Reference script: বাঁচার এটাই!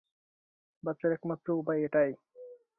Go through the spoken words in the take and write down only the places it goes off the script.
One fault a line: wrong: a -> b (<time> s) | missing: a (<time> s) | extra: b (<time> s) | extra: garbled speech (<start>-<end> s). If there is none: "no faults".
extra: একমাত্র উপায় (1.1 s)